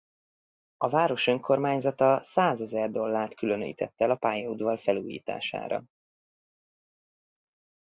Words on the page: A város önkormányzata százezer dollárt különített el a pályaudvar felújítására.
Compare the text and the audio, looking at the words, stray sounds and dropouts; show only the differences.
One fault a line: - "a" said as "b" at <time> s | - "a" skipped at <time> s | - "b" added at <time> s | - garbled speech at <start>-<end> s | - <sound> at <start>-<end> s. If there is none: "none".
none